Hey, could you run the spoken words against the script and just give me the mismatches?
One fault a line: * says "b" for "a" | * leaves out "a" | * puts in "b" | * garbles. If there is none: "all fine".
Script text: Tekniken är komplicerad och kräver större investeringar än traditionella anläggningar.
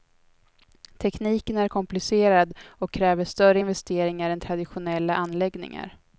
all fine